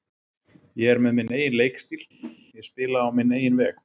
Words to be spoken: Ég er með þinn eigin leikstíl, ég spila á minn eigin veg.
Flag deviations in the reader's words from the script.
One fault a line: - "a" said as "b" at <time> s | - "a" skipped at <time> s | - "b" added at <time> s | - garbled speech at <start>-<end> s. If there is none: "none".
- "þinn" said as "minn" at 1.2 s